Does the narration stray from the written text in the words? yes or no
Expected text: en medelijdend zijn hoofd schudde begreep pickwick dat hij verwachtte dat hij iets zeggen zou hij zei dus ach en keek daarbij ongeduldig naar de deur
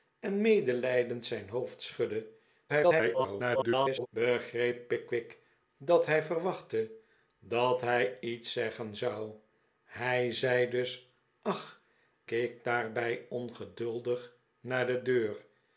yes